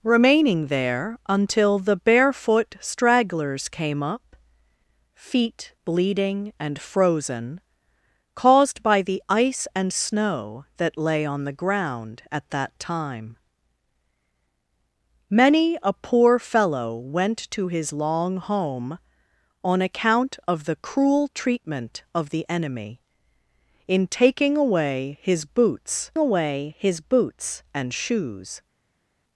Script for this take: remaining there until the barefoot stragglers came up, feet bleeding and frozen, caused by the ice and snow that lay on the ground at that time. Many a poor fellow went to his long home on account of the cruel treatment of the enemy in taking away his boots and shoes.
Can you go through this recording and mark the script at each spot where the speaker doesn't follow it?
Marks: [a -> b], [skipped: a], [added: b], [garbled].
remaining there until the barefoot stragglers came up, feet bleeding and frozen, caused by the ice and snow that lay on the ground at that time. Many a poor fellow went to his long home on account of the cruel treatment of the enemy in taking away his boots [added: away his boots] and shoes.